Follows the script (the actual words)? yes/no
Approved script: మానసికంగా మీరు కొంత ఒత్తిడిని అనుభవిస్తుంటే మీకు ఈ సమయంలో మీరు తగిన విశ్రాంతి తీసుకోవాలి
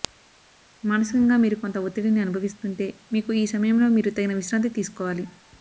yes